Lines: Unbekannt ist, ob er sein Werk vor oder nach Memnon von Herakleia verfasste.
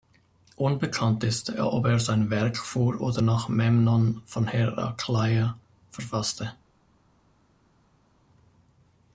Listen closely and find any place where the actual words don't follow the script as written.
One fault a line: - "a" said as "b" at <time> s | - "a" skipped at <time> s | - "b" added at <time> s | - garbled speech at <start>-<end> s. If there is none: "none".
none